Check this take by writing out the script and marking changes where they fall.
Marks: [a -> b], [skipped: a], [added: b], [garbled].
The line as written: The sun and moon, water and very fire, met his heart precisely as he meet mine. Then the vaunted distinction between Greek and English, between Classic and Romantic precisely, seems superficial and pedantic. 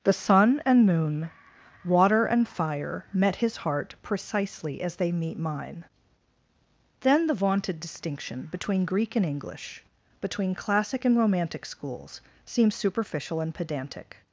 The sun and moon, water and [skipped: very] fire, met his heart precisely as [he -> they] meet mine. Then the vaunted distinction between Greek and English, between Classic and Romantic [precisely, -> schools] seems superficial and pedantic.